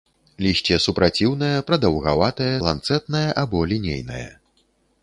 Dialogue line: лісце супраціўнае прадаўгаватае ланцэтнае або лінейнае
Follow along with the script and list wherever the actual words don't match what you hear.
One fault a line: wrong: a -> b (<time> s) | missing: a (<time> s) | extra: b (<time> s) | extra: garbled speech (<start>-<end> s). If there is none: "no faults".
no faults